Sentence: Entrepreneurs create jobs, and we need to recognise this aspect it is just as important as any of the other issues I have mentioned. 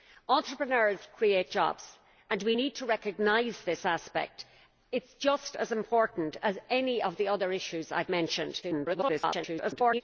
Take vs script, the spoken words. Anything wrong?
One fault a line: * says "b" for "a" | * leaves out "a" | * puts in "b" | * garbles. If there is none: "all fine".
* garbles